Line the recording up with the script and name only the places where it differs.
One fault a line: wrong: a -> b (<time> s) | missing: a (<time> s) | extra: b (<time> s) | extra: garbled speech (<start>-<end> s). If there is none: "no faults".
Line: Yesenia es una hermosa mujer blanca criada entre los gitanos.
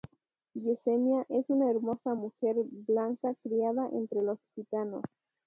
no faults